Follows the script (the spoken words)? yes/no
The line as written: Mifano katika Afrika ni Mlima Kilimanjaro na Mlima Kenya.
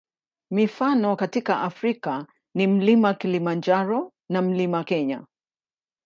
yes